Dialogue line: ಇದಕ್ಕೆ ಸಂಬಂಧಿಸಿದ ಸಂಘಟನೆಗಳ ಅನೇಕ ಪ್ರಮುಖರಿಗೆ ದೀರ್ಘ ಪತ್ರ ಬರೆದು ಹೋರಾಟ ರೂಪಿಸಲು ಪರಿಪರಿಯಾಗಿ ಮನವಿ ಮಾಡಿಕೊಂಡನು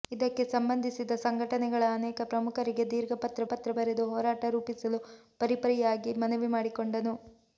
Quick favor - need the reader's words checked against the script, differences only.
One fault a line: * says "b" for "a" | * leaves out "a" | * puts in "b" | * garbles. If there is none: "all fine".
* puts in "ಪತ್ರ"